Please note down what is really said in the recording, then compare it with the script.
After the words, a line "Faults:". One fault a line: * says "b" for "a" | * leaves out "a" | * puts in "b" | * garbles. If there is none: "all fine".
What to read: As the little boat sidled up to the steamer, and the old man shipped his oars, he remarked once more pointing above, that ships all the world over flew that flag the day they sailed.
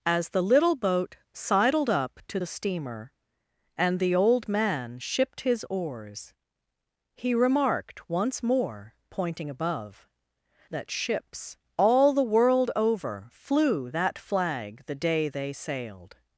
As the little boat sidled up to the steamer, and the old man shipped his oars, he remarked once more pointing above, that ships all the world over flew that flag the day they sailed.
Faults:
all fine